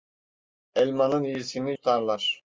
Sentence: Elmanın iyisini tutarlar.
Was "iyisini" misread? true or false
false